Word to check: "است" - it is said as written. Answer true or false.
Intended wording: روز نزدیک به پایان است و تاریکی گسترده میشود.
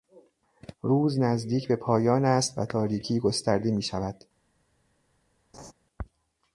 true